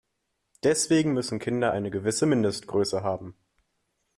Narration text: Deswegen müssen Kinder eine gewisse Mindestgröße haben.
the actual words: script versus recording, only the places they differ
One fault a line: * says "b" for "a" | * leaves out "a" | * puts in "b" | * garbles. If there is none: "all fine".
all fine